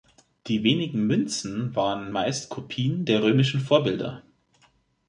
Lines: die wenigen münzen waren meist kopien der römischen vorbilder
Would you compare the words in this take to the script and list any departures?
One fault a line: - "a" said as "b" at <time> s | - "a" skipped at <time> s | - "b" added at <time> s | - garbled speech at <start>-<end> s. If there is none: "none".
none